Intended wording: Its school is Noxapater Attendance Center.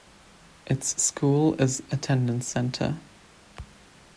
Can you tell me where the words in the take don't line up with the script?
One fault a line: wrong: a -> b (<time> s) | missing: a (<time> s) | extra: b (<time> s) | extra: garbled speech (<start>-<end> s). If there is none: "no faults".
missing: Noxapater (1.8 s)